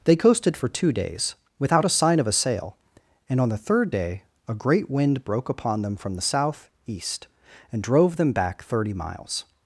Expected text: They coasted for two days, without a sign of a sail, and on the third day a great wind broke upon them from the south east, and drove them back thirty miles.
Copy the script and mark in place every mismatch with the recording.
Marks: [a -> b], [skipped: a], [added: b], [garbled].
They coasted for two days, without a sign of a sail, and on the third day a great wind broke upon them from the south east, and drove them back thirty miles.